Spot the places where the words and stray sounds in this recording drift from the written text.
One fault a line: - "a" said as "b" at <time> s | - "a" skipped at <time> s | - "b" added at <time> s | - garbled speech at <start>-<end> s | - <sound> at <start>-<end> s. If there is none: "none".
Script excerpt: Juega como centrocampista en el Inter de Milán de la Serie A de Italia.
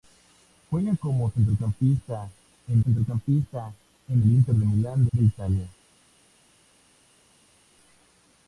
- "centrocampista en" added at 2.8 s
- "la Serie A" skipped at 5.1 s